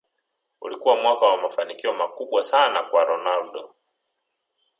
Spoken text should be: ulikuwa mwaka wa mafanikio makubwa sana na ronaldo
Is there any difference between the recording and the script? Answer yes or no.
yes